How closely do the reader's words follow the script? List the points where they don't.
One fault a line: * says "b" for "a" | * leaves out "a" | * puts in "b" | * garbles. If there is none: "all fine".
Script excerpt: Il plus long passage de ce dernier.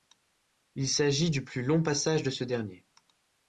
* puts in "s'agit du"